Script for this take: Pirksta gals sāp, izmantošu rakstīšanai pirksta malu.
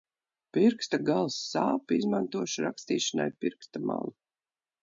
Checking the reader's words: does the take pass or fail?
pass